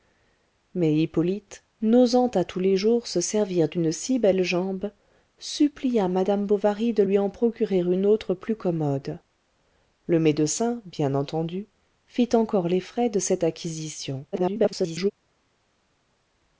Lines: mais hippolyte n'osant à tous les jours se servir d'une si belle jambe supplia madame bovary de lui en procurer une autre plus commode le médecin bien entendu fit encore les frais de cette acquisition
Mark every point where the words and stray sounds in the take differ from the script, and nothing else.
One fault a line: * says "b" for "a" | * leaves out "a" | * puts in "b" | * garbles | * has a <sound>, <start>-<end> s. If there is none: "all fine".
* garbles